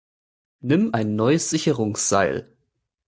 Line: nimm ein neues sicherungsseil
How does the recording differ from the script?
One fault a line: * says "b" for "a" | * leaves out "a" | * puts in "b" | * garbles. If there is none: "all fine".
all fine